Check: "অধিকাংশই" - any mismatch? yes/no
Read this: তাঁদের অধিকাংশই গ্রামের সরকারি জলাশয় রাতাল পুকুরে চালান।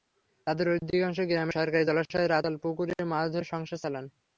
no